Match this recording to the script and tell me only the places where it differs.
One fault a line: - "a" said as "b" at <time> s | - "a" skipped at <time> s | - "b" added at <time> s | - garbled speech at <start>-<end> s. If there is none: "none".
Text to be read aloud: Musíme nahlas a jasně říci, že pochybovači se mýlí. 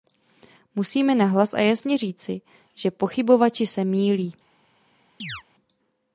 none